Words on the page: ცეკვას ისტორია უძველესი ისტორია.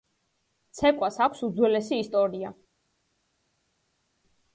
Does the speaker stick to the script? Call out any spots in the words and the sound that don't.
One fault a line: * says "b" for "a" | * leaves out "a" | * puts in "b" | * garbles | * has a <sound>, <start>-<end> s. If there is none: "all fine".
* says "აქვს" for "ისტორია"